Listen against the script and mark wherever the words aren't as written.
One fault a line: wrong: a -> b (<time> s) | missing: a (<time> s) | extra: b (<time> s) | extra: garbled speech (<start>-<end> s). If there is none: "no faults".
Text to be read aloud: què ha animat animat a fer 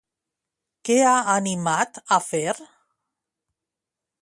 missing: animat (2.0 s)